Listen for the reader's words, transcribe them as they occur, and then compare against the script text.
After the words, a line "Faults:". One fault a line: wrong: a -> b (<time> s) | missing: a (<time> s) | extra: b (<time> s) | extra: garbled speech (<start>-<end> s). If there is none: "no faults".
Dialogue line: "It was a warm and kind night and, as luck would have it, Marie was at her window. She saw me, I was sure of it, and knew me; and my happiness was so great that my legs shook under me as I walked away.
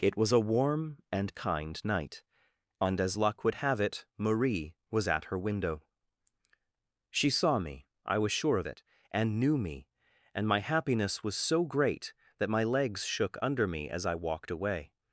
"It was a warm and kind night and, as luck would have it, Marie was at her window. She saw me, I was sure of it, and knew me; and my happiness was so great that my legs shook under me as I walked away.
Faults:
no faults